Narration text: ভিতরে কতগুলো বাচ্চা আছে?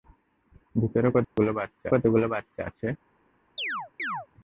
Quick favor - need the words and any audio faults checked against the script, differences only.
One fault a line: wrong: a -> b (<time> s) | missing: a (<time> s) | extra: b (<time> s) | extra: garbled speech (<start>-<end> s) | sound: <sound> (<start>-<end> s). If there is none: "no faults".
sound: dropout (1.2-1.4 s)
extra: কতগুলো বাচ্চা (1.9 s)
sound: chirp (3.6-4.3 s)